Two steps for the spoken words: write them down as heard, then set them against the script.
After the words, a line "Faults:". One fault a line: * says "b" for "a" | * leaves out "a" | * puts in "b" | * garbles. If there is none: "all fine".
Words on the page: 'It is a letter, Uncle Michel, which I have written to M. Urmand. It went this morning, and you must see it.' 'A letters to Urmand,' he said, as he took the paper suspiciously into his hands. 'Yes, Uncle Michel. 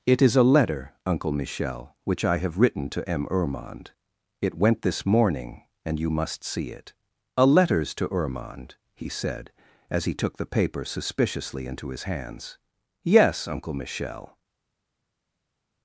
'It is a letter, Uncle Michel, which I have written to M. Urmand. It went this morning, and you must see it.' 'A letters to Urmand,' he said, as he took the paper suspiciously into his hands. 'Yes, Uncle Michel.
Faults:
all fine